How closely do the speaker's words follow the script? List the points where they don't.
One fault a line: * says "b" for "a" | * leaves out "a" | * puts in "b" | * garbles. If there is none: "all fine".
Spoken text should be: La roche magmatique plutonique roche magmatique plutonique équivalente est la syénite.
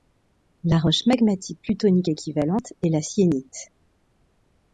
* leaves out "roche magmatique plutonique"